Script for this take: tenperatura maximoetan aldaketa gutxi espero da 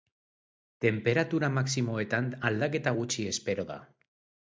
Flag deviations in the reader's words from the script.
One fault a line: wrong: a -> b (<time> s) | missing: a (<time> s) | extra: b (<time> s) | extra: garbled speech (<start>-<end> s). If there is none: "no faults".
no faults